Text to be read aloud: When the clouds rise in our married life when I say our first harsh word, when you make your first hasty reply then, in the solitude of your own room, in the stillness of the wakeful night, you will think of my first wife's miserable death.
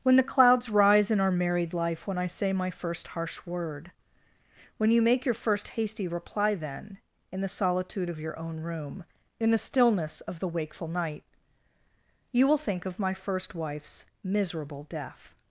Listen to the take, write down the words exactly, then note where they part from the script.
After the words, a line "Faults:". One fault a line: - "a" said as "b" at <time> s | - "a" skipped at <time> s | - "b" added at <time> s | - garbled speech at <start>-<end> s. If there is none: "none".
When the clouds rise in our married life when I say my first harsh word, when you make your first hasty reply then, in the solitude of your own room, in the stillness of the wakeful night, you will think of my first wife's miserable death.
Faults:
- "our" said as "my" at 2.5 s